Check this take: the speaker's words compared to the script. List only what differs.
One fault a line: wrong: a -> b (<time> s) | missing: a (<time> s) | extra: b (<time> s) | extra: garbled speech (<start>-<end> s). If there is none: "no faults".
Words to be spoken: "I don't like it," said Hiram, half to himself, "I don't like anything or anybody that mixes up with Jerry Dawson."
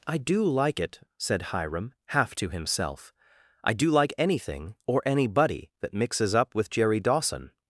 wrong: don't -> do (0.2 s)
wrong: don't -> do (3.7 s)